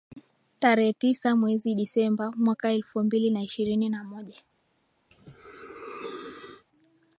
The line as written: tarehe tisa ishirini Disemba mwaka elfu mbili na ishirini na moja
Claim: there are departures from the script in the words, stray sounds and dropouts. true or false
true